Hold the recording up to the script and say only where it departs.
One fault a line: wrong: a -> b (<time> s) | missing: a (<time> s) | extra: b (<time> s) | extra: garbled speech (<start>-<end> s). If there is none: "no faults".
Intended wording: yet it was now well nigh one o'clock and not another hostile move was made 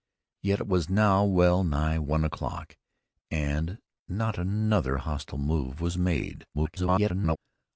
extra: garbled speech (6.5-7.4 s)